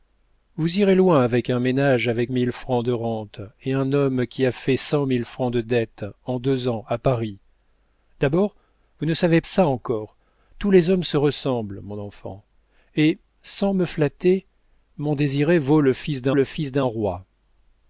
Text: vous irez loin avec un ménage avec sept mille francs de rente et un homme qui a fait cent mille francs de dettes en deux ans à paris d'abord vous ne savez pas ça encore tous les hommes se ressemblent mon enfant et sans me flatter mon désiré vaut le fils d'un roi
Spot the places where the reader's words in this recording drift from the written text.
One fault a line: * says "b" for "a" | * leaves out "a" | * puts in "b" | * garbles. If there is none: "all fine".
* leaves out "sept"
* leaves out "pas"
* puts in "le fils d'un"